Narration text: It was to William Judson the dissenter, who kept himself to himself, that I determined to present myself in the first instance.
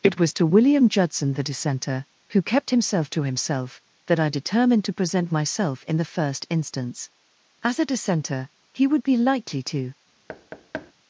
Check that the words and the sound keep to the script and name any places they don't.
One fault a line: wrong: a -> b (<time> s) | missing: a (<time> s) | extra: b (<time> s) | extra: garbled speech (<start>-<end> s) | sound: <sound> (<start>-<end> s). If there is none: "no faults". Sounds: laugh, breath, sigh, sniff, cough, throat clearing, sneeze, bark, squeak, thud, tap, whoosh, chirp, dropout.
extra: As a dissenter he would be likely to (7.6 s)
sound: thud (10.3-10.9 s)